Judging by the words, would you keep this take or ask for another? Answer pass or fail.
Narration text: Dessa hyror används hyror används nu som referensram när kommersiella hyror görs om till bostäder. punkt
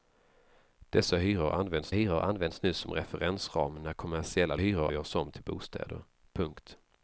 pass